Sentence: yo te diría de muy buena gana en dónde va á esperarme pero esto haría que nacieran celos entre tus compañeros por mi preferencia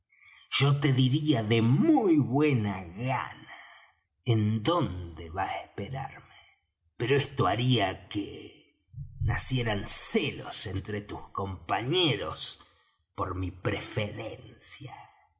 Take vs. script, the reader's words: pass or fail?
pass